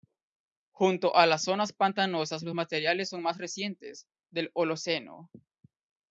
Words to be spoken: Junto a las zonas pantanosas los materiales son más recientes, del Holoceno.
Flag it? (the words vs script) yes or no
no